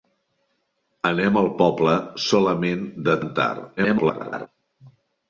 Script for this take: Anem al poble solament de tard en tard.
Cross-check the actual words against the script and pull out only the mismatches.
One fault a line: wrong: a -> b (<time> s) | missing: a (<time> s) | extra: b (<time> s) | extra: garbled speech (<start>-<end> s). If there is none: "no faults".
missing: tard (3.2 s)
extra: garbled speech (3.8-4.5 s)